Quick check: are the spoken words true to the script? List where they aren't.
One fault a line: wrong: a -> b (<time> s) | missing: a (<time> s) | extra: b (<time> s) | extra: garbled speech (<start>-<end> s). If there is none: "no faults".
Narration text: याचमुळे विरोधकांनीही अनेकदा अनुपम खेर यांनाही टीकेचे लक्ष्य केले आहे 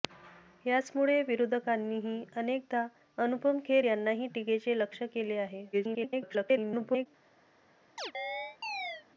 extra: garbled speech (5.7-7.1 s)